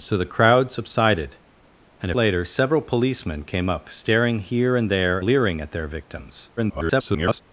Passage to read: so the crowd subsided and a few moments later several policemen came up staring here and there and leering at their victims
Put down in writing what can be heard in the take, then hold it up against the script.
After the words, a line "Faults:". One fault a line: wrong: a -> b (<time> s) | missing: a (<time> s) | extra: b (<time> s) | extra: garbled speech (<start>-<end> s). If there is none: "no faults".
so the crowd subsided and later several policemen came up staring here and there leering at their victims [garbled]
Faults:
missing: a few moments (2.1 s)
missing: and (5.2 s)
extra: garbled speech (6.6-7.4 s)